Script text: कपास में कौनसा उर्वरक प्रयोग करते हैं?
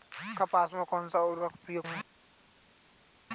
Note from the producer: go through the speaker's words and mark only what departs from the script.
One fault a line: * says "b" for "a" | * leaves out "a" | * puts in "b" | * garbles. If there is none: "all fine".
* leaves out "करते"